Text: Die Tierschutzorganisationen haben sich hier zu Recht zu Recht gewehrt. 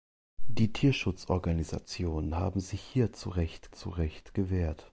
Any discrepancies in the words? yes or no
no